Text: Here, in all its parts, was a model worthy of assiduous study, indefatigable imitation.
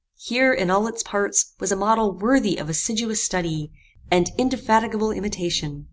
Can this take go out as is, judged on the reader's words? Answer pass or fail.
fail